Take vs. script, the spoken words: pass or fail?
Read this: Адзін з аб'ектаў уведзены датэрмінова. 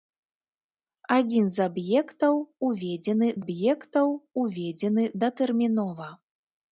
fail